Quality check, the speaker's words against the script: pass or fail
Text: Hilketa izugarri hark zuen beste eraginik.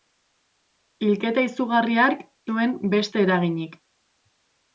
pass